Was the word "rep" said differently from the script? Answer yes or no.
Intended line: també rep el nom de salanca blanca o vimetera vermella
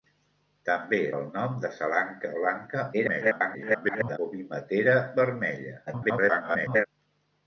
yes